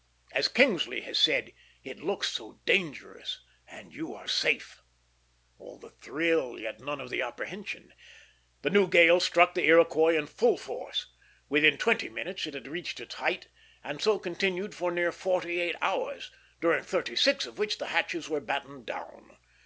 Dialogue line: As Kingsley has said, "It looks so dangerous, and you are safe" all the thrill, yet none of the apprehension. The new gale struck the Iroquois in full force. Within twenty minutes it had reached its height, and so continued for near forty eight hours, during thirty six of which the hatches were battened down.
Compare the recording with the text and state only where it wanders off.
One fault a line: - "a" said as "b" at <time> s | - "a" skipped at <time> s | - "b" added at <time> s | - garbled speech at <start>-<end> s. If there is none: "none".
none